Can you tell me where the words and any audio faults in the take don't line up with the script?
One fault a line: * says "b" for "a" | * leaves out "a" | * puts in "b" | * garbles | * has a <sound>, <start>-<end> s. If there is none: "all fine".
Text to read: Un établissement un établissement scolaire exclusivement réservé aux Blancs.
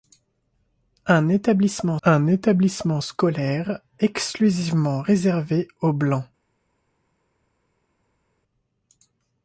all fine